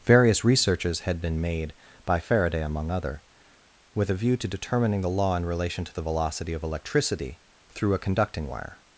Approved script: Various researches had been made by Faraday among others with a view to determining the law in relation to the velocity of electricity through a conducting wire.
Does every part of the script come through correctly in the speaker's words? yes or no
no